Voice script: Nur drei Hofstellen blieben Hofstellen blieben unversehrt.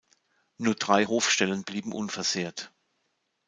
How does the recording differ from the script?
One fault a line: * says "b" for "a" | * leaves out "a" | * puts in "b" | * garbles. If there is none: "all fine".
* leaves out "Hofstellen blieben"